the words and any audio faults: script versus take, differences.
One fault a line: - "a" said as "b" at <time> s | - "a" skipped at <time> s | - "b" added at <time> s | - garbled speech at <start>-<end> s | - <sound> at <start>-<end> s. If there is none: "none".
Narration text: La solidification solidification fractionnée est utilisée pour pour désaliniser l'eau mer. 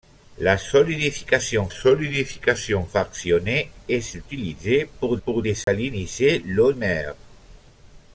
- dropout at 5.6-5.7 s